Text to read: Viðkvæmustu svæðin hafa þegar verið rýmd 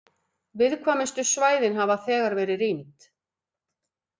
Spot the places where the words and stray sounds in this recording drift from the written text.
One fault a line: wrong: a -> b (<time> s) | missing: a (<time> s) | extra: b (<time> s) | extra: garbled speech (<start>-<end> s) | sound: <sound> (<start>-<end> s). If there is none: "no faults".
no faults